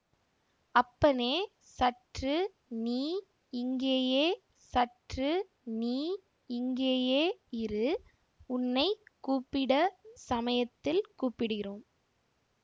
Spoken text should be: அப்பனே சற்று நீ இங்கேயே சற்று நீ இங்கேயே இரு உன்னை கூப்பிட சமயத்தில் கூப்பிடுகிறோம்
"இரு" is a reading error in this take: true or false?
false